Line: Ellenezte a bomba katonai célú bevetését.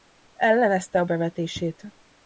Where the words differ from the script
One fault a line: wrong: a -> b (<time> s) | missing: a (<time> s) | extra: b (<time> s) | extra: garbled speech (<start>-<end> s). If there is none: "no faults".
missing: bomba katonai célú (1.1 s)